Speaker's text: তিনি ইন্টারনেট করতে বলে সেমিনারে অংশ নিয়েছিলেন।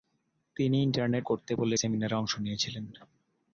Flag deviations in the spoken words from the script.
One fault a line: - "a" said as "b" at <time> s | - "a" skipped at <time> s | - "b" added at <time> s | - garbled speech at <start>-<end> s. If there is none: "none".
none